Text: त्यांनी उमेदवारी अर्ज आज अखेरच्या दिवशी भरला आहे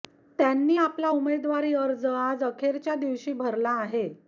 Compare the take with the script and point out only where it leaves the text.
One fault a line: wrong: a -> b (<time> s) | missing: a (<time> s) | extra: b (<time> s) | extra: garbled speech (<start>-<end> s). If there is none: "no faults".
extra: आपला (0.8 s)